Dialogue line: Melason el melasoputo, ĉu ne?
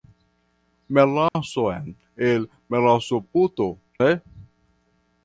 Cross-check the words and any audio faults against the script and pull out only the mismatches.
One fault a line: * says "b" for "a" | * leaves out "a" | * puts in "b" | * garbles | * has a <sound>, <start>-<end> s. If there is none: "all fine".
* has a dropout, 1.3-1.4 s
* leaves out "ĉu"